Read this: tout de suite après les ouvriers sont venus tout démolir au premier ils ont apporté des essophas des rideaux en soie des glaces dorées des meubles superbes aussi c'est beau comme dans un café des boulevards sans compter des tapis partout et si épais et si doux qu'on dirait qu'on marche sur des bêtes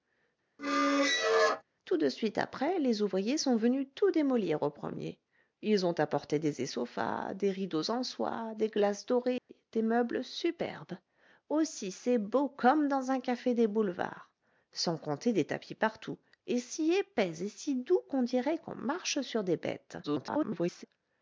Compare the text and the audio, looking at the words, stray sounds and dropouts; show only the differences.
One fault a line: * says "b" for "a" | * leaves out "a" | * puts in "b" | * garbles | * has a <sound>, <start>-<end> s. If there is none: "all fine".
* has a squeak, 0.6-1.6 s
* has a dropout, 9.4-9.5 s
* garbles